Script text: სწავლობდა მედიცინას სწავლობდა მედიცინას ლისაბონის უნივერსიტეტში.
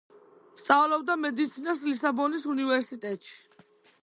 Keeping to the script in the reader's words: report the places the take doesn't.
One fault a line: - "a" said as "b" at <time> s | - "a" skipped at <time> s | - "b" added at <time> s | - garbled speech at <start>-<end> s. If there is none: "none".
- "სწავლობდა მედიცინას" skipped at 1.8 s